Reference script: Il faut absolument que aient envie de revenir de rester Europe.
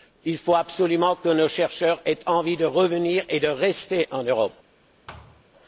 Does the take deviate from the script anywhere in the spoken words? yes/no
yes